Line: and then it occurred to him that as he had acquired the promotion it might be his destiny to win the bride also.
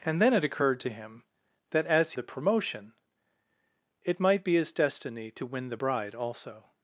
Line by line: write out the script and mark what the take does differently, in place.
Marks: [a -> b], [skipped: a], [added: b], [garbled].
and then it occurred to him that as [skipped: he had acquired] the promotion it might be his destiny to win the bride also.